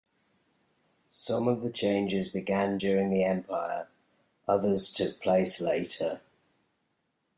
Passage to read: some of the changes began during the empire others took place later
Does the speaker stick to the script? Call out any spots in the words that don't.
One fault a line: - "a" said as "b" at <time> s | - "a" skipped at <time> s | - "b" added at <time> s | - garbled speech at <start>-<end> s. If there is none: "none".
none